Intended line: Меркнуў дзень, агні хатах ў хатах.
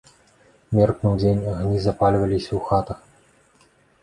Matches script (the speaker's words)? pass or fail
fail